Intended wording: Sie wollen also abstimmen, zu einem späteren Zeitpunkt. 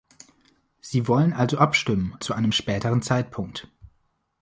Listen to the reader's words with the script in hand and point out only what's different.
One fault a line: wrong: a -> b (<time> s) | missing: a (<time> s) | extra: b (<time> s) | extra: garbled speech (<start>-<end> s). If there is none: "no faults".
no faults